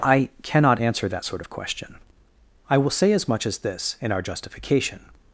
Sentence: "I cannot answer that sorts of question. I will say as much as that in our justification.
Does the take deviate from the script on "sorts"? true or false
true